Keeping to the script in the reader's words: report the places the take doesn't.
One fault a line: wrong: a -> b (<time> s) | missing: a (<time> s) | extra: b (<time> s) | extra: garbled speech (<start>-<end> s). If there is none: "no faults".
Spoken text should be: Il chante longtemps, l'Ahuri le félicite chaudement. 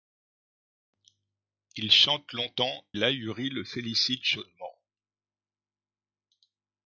no faults